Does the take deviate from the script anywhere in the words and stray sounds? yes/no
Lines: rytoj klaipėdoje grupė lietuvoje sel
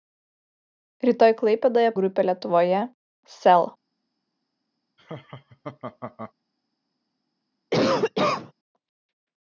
yes